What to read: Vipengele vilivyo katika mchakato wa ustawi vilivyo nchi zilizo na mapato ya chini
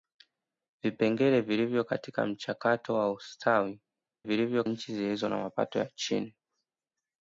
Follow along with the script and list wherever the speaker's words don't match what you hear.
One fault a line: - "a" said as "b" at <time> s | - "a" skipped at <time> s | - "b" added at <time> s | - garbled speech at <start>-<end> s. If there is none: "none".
none